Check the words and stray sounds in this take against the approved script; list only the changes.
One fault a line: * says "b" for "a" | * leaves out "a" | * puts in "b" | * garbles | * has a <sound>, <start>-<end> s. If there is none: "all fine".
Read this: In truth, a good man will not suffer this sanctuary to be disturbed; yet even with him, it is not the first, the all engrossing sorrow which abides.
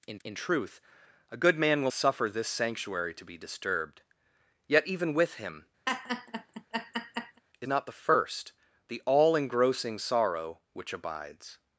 * puts in "in"
* leaves out "not"
* has a laugh, 5.9-7.4 s
* leaves out "is"